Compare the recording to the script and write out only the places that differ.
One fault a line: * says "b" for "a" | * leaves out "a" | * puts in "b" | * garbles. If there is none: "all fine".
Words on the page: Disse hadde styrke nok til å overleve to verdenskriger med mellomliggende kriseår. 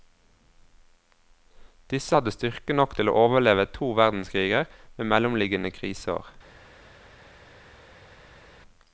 all fine